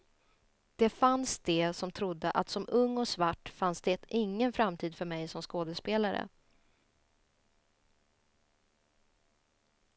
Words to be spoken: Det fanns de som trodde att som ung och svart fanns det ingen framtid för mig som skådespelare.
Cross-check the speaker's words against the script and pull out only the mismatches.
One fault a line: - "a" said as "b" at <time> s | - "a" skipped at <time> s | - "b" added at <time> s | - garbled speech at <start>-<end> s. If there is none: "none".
none